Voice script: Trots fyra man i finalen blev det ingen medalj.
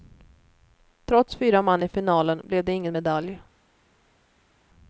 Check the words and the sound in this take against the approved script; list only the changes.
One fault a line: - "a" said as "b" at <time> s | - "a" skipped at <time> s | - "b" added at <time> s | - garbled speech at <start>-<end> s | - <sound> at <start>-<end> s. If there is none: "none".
none